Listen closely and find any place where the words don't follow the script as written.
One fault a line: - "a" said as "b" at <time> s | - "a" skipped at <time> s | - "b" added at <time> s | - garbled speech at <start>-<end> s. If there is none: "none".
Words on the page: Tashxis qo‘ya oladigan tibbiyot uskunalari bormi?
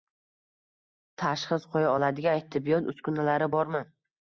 none